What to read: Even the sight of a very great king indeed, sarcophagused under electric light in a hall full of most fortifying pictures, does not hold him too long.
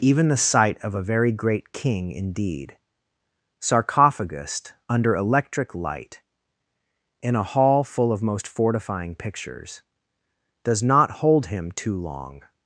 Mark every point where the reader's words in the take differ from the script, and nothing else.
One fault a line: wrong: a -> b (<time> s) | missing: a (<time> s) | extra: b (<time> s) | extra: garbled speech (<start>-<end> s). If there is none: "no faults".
no faults